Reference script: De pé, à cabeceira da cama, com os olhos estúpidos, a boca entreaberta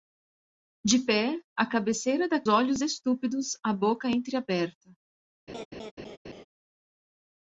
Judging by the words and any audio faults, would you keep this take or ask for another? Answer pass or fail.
fail